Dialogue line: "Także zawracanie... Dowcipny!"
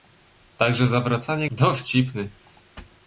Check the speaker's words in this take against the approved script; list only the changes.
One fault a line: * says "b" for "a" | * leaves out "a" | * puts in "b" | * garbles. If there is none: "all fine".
all fine